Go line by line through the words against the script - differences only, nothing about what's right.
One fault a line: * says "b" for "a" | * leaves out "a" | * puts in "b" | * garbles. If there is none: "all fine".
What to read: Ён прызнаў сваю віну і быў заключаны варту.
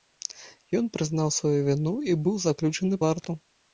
all fine